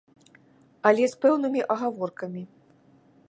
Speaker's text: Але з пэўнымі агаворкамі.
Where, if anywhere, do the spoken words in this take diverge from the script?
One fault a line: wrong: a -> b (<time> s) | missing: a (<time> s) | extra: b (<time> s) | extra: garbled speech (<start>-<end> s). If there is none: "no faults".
no faults